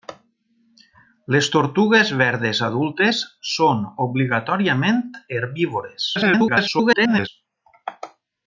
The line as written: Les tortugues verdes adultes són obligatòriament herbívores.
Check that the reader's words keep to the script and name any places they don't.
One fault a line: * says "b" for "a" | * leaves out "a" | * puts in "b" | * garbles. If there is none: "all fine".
* garbles